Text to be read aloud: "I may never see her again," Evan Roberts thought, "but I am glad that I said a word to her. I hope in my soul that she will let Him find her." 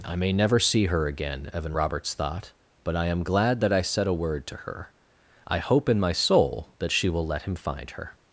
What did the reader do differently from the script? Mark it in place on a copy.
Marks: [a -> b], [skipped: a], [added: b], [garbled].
"I may never see her again," Evan Roberts thought, "but I am glad that I said a word to her. I hope in my soul that she will let Him find her."